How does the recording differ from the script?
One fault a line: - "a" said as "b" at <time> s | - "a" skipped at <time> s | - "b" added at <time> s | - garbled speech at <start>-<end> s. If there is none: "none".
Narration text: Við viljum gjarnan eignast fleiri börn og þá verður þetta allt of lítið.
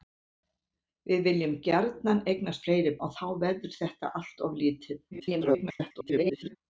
- "börn" skipped at 3.0 s
- garbled speech at 5.1-6.6 s